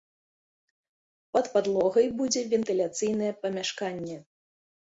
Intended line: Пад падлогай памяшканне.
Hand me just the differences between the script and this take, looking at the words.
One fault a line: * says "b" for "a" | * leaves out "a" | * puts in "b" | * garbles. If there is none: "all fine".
* puts in "будзе вентыляцыйнае"